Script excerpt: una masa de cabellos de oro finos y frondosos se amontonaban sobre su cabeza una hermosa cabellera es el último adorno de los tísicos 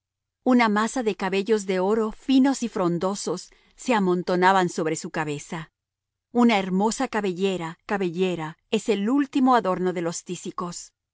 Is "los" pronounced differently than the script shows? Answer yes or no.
no